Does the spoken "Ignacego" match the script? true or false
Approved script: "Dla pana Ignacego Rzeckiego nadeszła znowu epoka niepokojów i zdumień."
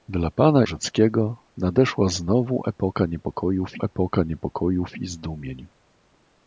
false